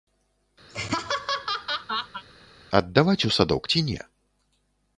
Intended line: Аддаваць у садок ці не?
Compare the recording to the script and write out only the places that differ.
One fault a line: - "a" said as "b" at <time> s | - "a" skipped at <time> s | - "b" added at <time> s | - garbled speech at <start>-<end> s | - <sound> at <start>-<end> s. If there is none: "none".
- laugh at 0.7-2.2 s